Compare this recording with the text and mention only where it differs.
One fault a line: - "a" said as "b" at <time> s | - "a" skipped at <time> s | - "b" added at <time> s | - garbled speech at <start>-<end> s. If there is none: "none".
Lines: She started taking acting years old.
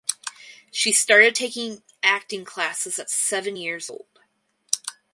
- "classes at seven" added at 2.4 s